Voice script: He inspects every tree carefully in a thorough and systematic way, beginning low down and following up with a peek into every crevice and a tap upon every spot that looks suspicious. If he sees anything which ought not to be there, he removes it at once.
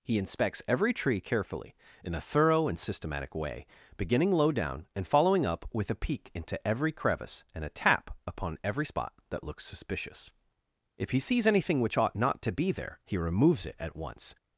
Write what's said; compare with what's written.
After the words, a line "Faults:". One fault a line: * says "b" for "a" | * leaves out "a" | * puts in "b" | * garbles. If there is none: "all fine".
He inspects every tree carefully in a thorough and systematic way, beginning low down and following up with a peek into every crevice and a tap upon every spot that looks suspicious. If he sees anything which ought not to be there, he removes it at once.
Faults:
all fine